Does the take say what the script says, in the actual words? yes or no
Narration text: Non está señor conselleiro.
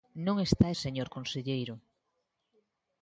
yes